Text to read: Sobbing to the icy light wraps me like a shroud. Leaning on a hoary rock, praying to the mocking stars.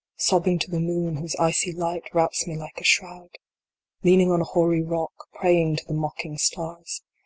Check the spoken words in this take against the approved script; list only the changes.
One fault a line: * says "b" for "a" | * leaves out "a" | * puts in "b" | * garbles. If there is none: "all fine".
* puts in "moon whose"